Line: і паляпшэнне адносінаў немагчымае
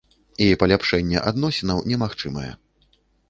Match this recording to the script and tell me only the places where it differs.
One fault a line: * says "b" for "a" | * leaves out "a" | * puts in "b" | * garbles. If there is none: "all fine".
all fine